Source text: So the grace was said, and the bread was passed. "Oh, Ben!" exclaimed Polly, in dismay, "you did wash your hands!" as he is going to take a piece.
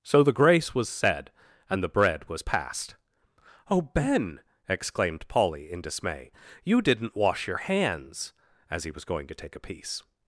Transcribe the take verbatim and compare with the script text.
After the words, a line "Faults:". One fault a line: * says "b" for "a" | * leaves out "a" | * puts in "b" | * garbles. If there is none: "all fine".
So the grace was said, and the bread was passed. "Oh, Ben!" exclaimed Polly, in dismay, "you didn't wash your hands!" as he was going to take a piece.
Faults:
* says "didn't" for "did"
* says "was" for "is"